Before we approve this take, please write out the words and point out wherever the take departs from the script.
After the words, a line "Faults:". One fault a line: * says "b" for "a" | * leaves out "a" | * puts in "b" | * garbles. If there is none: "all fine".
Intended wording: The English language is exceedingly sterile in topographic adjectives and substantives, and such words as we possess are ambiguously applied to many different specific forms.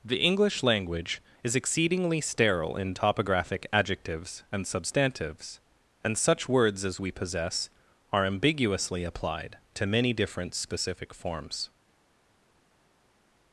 The English language is exceedingly sterile in topographic adjectives and substantives, and such words as we possess are ambiguously applied to many different specific forms.
Faults:
all fine